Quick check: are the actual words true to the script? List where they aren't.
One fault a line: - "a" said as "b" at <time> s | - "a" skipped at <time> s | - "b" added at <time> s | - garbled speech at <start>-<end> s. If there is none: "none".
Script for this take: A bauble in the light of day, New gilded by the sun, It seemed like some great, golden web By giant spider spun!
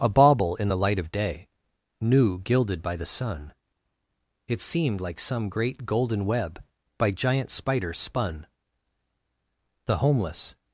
- "The homeless" added at 9.8 s